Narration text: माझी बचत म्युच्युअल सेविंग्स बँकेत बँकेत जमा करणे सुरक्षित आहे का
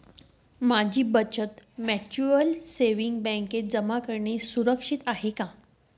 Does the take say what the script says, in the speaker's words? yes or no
no